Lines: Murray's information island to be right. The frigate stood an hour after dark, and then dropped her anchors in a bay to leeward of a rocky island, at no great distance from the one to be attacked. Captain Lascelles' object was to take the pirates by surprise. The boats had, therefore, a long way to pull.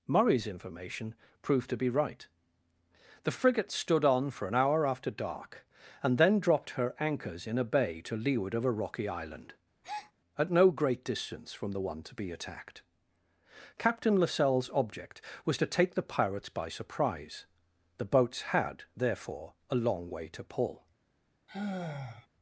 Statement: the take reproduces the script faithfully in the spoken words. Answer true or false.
false